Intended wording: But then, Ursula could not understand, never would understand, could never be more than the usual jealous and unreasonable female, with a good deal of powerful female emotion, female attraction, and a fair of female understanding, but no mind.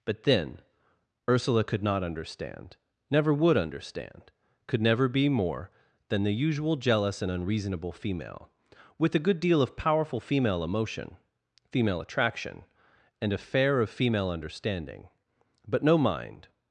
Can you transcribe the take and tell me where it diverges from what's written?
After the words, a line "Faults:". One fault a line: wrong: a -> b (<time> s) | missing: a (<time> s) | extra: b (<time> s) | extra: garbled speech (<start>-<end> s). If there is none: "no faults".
But then, Ursula could not understand, never would understand, could never be more than the usual jealous and unreasonable female, with a good deal of powerful female emotion, female attraction, and a fair of female understanding, but no mind.
Faults:
no faults